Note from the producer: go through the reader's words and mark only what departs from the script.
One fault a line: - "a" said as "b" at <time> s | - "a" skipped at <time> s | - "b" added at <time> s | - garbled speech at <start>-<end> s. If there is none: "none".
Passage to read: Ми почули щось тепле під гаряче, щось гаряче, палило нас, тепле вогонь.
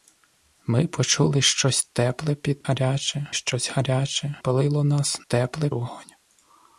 none